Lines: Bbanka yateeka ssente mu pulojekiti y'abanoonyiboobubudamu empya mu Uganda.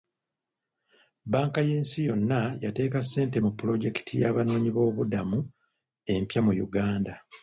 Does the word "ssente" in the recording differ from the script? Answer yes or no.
no